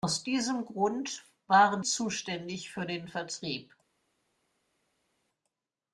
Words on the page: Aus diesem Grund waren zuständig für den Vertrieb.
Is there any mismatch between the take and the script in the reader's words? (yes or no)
no